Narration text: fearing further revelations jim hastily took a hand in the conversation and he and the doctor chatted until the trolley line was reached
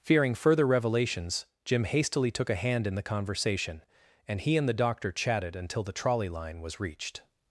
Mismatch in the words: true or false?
false